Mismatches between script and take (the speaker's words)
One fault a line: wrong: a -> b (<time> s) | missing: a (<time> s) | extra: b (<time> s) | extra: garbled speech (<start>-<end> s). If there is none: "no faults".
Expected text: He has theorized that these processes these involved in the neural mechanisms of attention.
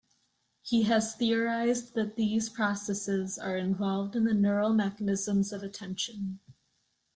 wrong: these -> are (3.4 s)